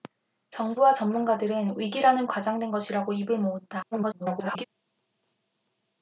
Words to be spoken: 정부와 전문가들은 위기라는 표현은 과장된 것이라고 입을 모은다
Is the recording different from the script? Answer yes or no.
yes